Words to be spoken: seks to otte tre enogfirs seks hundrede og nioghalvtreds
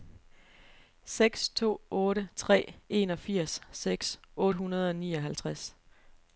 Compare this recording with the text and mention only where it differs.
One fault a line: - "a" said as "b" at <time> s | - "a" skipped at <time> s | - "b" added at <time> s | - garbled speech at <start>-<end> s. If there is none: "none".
none